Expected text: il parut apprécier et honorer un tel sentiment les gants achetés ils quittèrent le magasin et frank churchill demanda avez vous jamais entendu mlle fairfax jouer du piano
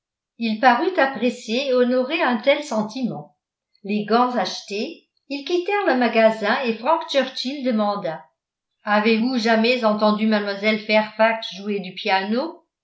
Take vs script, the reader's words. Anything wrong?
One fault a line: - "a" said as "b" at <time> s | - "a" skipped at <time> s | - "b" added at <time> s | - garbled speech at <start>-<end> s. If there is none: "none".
none